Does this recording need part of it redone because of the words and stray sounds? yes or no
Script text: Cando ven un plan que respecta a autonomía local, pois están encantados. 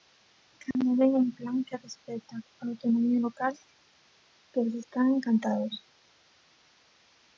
yes